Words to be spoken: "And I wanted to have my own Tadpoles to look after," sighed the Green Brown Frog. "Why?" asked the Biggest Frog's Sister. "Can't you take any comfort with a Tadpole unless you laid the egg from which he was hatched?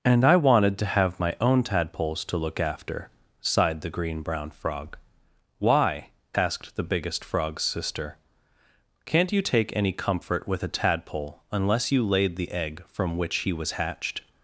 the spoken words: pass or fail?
pass